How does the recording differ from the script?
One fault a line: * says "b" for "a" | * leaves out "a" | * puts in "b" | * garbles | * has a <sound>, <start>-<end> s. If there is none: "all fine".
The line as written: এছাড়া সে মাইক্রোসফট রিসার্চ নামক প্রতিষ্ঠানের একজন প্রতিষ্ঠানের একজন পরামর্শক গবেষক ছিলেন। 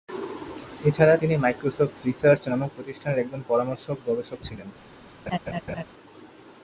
* says "তিনি" for "সে"
* leaves out "প্রতিষ্ঠানের একজন"
* has a laugh, 5.3-5.8 s